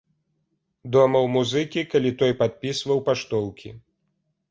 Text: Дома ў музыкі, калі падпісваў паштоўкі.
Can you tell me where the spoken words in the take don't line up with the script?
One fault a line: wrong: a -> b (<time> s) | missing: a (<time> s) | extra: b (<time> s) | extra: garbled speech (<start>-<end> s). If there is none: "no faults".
extra: той (2.2 s)